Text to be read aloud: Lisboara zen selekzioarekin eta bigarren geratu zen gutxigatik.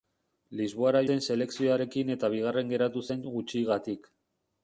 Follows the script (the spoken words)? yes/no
yes